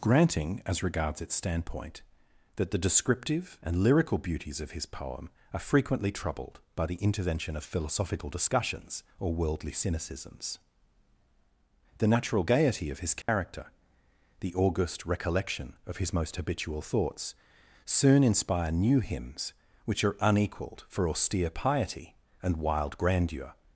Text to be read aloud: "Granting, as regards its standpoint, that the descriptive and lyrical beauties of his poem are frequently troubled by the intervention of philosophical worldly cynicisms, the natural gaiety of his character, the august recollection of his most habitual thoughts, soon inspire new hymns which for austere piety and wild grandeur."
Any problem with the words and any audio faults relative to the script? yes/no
yes